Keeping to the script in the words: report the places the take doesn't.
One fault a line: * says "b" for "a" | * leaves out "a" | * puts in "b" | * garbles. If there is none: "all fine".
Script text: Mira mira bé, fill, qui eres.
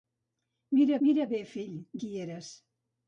all fine